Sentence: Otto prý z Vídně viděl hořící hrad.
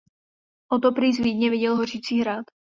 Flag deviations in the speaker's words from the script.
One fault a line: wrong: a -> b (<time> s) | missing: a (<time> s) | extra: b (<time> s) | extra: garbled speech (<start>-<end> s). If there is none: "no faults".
no faults